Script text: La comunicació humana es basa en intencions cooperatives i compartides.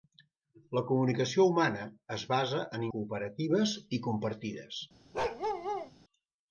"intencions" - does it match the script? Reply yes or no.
no